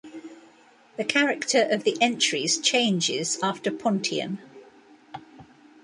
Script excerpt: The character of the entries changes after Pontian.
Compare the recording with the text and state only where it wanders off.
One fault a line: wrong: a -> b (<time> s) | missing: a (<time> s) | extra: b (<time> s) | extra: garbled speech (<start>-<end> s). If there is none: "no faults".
no faults